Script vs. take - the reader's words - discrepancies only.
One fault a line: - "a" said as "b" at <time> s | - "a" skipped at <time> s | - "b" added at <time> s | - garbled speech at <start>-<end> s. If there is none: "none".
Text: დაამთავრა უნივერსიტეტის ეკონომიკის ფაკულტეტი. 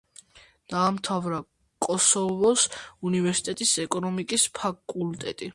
- "კოსოვოს" added at 1.9 s